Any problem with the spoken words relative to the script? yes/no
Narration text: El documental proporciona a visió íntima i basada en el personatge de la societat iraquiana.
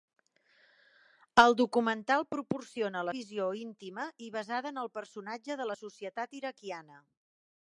no